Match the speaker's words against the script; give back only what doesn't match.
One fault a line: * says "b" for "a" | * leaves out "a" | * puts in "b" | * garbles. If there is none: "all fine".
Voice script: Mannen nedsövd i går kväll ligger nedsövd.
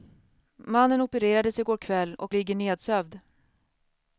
* says "opererades" for "nedsövd"
* puts in "och"